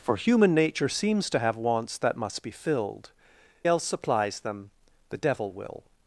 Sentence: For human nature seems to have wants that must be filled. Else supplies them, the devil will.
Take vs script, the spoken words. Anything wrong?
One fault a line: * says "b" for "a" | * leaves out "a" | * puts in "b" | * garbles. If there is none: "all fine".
all fine